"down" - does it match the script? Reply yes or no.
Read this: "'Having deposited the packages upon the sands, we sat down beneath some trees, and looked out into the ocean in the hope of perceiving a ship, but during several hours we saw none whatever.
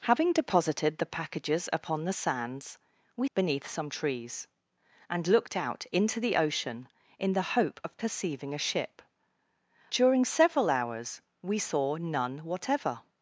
no